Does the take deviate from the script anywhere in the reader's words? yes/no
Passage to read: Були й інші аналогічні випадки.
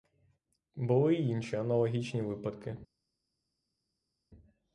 no